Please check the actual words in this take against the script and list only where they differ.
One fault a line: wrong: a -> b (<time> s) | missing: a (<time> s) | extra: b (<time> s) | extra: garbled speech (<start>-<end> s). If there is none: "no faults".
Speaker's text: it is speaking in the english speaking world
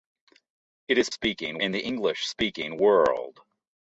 no faults